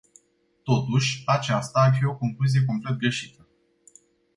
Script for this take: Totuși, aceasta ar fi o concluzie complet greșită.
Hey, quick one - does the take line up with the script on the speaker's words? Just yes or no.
yes